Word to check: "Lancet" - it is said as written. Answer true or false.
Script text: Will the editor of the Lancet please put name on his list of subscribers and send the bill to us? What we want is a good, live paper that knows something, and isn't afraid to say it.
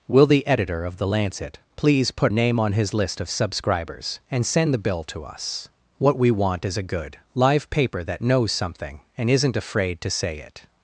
true